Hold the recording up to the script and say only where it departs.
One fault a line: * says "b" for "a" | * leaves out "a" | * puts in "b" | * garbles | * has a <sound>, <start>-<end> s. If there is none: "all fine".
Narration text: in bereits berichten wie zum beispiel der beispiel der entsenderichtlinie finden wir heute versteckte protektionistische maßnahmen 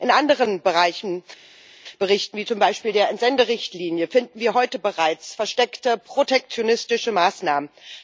* says "anderen" for "bereits"
* leaves out "beispiel der"
* puts in "bereits"